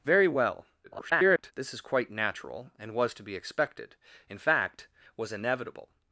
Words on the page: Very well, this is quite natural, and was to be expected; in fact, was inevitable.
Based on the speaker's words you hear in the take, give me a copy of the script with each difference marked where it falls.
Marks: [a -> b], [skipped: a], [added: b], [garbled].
Very well, [garbled] this is quite natural, and was to be expected; in fact, was inevitable.